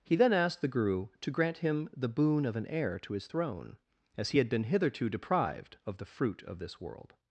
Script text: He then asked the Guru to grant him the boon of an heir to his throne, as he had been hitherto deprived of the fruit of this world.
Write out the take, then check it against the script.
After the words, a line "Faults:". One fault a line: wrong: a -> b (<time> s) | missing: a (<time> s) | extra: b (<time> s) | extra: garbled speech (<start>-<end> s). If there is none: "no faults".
He then asked the Guru to grant him the boon of an heir to his throne, as he had been hitherto deprived of the fruit of this world.
Faults:
no faults